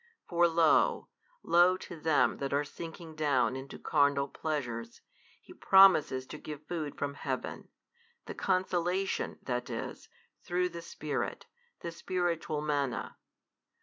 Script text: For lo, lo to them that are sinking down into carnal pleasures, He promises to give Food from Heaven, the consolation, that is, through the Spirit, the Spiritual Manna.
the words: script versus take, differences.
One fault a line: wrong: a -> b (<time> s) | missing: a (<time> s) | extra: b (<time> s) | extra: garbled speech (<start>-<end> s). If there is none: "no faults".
no faults